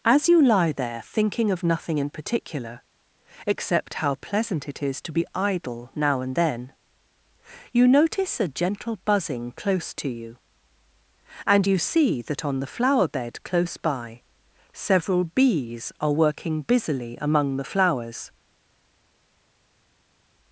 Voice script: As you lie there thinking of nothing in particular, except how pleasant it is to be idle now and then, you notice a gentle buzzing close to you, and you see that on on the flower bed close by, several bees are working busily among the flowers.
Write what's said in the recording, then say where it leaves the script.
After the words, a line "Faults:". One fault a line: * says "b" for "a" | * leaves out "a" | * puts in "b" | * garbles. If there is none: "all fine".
As you lie there thinking of nothing in particular, except how pleasant it is to be idle now and then, you notice a gentle buzzing close to you, and you see that on the flower bed close by, several bees are working busily among the flowers.
Faults:
* leaves out "on"